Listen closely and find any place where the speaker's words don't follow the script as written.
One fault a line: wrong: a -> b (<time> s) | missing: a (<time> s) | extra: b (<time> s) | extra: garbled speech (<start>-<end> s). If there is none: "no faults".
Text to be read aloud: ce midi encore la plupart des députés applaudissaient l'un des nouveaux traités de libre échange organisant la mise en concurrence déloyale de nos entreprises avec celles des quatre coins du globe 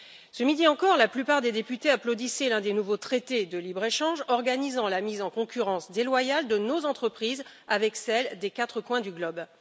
no faults